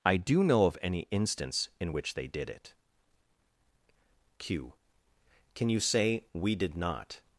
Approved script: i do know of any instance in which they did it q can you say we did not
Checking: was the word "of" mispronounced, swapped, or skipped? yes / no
no